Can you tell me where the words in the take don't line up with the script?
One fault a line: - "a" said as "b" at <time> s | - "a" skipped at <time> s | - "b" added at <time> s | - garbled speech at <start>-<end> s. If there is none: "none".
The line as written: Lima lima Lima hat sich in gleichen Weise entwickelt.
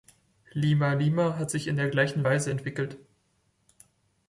- "Lima" skipped at 1.4 s
- "der" added at 1.8 s